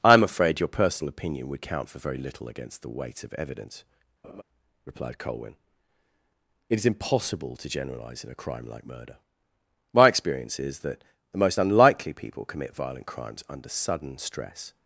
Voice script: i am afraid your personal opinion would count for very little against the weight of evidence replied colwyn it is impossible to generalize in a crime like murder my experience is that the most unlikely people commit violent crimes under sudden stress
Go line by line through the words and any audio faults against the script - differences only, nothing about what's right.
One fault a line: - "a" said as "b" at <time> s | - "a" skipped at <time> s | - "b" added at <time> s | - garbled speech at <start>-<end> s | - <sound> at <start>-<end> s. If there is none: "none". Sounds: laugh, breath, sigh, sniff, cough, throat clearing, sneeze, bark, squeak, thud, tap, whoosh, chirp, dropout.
- laugh at 4.2-4.4 s